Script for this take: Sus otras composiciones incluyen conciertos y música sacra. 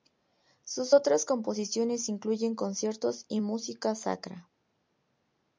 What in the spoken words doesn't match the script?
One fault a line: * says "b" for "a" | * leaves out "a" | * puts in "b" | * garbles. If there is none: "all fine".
all fine